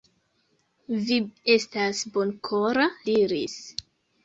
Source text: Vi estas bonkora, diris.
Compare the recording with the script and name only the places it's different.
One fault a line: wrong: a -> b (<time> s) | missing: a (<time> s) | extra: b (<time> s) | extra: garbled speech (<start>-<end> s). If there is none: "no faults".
no faults